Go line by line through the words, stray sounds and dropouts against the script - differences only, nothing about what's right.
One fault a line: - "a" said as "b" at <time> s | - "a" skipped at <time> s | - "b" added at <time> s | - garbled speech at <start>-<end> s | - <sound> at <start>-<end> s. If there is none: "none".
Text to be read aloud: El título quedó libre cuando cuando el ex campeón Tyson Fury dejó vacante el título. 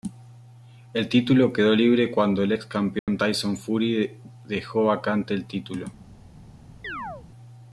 - "cuando" skipped at 2.4 s
- dropout at 3.0-3.1 s
- chirp at 6.8-7.3 s